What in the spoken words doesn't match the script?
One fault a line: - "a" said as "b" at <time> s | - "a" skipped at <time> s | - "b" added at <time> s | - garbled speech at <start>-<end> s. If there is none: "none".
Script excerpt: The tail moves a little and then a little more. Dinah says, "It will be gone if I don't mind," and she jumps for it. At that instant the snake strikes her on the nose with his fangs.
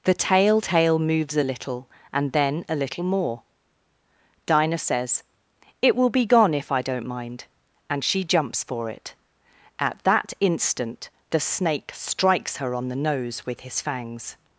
- "tail" added at 0.6 s